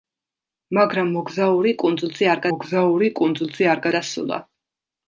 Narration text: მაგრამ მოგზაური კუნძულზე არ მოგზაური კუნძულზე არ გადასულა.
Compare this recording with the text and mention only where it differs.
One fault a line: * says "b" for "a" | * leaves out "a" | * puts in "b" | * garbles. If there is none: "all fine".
all fine